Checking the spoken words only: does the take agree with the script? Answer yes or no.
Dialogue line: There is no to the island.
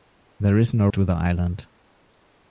yes